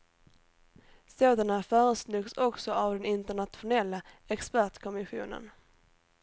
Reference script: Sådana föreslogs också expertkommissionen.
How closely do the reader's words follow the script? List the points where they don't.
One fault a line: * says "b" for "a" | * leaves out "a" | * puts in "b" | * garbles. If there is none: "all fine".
* puts in "av den internationella"